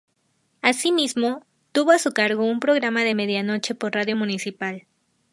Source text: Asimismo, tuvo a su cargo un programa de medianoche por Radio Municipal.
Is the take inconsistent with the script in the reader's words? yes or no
no